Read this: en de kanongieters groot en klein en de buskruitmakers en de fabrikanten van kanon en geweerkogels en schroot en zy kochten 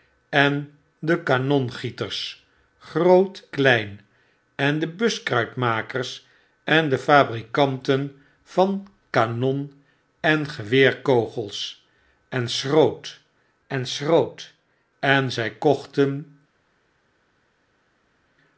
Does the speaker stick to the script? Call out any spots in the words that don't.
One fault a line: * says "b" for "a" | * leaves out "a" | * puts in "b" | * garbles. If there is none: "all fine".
* leaves out "en"
* puts in "schroot en"